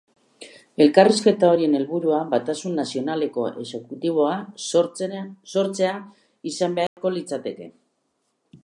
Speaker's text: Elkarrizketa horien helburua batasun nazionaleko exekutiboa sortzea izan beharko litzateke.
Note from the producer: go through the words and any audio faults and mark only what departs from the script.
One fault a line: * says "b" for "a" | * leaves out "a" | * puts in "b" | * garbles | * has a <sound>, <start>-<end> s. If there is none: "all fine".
* has a dropout, 6.9-7.0 s